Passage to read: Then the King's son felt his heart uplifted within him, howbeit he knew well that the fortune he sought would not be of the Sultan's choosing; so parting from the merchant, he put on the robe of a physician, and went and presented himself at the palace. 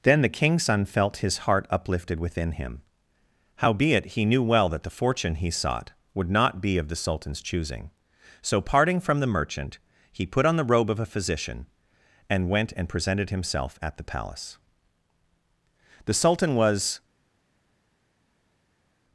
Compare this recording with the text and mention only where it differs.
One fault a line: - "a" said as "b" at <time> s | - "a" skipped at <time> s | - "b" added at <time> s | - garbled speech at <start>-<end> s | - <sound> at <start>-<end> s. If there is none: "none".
- "The Sultan was" added at 16.0 s